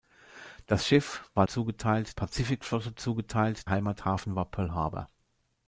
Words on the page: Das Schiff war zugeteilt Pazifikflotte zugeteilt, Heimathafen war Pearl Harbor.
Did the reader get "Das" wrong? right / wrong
right